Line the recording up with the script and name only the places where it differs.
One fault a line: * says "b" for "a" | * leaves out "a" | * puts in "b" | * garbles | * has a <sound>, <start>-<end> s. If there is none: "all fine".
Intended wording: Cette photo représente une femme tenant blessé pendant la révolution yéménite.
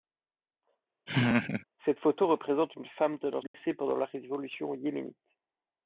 * has a laugh, 1.1-1.7 s
* has a dropout, 3.5-3.5 s